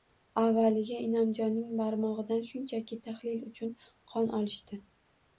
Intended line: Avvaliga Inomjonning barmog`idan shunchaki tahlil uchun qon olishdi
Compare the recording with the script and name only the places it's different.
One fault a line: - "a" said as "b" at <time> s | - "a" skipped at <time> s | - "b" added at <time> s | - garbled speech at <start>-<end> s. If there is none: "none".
none